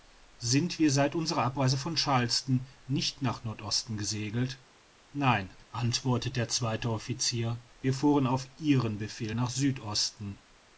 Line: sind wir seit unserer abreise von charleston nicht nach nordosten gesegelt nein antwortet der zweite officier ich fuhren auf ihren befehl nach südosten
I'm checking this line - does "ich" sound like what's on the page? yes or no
no